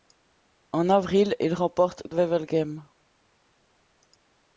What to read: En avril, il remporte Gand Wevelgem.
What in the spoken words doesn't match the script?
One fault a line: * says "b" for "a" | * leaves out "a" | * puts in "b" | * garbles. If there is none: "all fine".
* leaves out "Gand"